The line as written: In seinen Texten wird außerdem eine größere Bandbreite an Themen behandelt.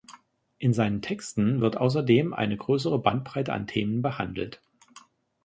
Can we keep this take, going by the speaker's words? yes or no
yes